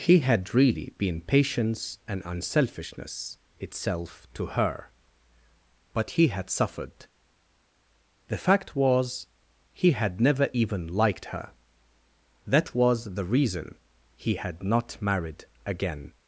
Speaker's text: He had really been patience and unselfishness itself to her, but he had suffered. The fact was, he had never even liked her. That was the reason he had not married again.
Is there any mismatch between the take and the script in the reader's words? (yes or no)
no